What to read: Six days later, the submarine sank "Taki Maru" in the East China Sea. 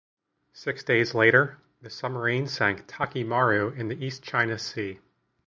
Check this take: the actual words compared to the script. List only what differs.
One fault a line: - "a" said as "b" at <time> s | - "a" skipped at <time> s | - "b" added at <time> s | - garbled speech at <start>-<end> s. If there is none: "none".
none